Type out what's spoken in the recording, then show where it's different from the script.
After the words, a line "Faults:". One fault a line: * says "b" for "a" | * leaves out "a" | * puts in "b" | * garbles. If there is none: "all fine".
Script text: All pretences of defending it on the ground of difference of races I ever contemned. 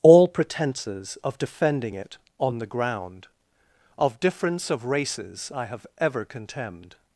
All pretences of defending it on the ground of difference of races I have ever contemned.
Faults:
* puts in "have"